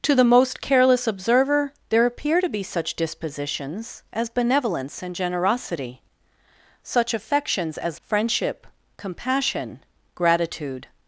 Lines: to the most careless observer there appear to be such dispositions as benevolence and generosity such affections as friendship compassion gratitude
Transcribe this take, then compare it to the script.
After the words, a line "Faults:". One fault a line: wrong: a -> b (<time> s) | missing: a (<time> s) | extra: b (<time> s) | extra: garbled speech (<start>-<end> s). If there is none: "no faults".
to the most careless observer there appear to be such dispositions as benevolence and generosity such affections as friendship compassion gratitude
Faults:
no faults